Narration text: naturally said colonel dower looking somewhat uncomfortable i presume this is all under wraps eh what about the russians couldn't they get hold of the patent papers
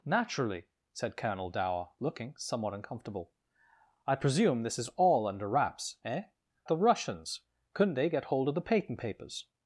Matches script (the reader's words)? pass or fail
fail